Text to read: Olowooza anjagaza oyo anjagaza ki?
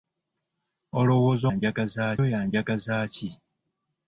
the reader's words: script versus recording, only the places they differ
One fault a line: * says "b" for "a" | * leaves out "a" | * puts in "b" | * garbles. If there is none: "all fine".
all fine